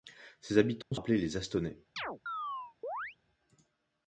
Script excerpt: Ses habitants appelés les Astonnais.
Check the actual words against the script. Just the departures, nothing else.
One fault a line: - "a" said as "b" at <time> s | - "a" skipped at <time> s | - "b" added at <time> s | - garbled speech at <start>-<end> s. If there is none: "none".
none